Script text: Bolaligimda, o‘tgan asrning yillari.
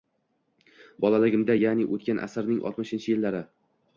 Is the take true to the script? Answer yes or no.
no